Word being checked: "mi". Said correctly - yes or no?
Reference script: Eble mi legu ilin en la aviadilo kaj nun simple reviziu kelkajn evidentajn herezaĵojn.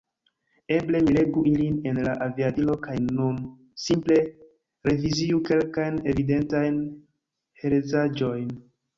yes